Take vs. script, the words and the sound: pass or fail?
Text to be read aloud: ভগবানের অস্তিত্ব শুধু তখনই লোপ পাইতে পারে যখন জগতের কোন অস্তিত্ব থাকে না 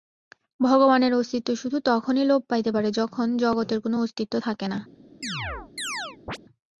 fail